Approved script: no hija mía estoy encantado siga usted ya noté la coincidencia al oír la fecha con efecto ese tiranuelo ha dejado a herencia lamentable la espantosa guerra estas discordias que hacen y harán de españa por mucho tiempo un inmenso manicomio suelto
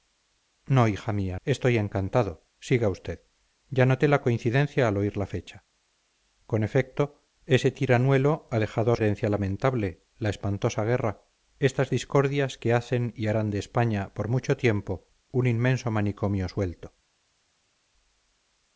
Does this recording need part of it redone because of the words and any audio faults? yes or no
no